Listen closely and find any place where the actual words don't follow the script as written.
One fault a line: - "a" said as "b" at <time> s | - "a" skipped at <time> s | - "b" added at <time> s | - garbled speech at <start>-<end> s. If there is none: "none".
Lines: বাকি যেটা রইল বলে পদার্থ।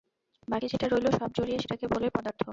- "সব জড়িয়ে সেটাকে" added at 1.2 s